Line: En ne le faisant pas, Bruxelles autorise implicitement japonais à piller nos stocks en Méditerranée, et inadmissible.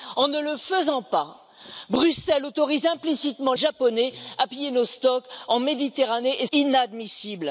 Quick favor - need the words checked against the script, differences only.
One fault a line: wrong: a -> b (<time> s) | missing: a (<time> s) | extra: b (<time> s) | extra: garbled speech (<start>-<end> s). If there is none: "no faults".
no faults